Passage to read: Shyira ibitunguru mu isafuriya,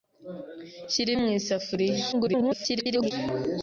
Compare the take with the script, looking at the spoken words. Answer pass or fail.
fail